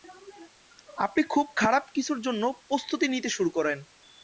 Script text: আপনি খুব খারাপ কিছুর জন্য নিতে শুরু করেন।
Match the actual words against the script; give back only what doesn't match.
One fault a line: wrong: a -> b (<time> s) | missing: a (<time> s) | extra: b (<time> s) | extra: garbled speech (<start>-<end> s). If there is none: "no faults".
extra: প্রস্তুতি (2.7 s)